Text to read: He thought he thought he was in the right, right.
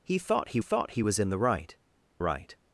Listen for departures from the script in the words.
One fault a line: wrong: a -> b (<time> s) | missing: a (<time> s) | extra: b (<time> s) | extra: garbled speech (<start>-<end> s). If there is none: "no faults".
no faults